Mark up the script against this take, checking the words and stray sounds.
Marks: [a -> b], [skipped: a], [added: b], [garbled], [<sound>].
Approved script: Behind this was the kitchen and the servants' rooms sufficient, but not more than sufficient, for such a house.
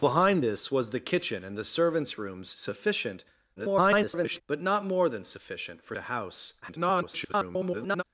Behind this was the kitchen and the servants' rooms sufficient, [garbled] but not more than sufficient, for [skipped: such] a house. [garbled]